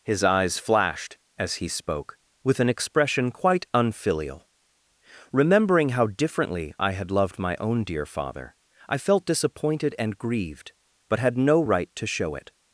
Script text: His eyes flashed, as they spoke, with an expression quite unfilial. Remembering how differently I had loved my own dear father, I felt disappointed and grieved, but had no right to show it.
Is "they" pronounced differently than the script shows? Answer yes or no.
yes